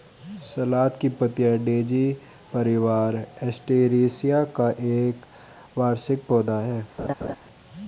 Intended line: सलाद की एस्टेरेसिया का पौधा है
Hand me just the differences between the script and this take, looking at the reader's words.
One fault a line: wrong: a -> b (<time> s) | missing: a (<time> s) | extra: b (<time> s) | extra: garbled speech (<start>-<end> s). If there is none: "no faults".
extra: पत्तियाँ डेज़ी परिवार (1.1 s)
extra: एक वार्षिक (4.9 s)